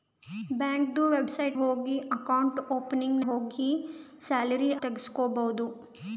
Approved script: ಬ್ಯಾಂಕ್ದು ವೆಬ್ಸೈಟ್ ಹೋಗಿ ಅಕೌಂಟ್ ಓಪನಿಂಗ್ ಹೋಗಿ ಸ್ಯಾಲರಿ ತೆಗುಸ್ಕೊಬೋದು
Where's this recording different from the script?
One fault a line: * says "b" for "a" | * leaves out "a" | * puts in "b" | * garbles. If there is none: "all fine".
all fine